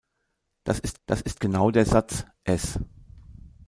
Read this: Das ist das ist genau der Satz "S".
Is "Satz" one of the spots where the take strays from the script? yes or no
no